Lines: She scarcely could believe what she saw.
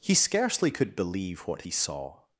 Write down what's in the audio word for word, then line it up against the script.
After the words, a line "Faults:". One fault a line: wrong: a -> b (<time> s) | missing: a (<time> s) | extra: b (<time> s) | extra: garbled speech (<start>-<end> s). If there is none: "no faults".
He scarcely could believe what he saw.
Faults:
wrong: She -> He (0.0 s)
wrong: she -> he (1.6 s)